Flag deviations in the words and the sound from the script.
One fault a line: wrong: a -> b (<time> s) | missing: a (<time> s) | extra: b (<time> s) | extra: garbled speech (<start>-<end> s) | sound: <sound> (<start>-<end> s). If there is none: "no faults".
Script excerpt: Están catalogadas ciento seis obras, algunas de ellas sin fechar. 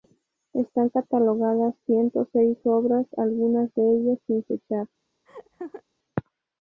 sound: laugh (5.3-5.8 s)